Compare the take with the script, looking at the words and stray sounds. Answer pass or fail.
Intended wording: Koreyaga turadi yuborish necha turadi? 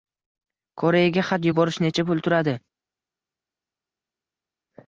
fail